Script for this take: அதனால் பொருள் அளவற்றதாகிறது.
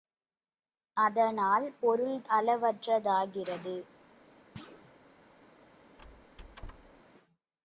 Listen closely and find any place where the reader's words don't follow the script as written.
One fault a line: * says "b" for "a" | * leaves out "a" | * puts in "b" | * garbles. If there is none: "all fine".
all fine